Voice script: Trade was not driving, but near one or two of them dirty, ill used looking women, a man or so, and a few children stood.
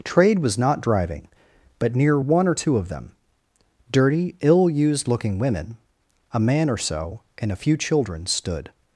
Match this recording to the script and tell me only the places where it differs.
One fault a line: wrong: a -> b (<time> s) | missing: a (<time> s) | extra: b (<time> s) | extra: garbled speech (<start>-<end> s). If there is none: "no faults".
no faults